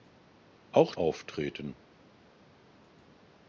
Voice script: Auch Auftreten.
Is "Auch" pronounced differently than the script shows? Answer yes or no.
no